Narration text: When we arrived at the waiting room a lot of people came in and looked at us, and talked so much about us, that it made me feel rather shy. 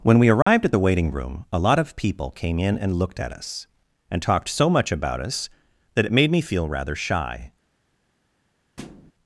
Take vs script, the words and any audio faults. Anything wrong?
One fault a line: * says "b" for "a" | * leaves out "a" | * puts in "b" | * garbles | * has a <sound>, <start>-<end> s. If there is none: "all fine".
* has a dropout, 0.4-0.5 s
* has a thud, 8.8-9.1 s